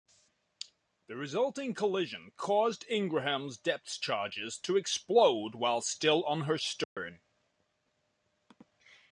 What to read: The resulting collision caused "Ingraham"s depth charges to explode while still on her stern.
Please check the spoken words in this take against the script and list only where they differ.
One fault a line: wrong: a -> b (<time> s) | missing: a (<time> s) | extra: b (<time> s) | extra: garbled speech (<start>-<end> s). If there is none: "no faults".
no faults